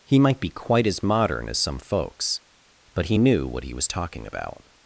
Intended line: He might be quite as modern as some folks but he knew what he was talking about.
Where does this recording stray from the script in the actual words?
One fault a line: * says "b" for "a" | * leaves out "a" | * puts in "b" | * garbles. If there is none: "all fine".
all fine